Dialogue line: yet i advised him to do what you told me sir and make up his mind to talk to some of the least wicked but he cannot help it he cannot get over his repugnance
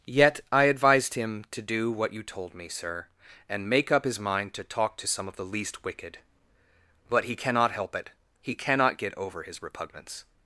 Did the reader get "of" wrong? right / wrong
right